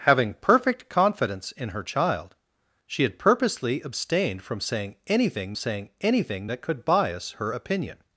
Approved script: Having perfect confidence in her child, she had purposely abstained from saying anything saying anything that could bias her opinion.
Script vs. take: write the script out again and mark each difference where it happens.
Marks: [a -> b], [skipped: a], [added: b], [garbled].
Having perfect confidence in her child, she had purposely abstained from saying anything saying anything that could bias her opinion.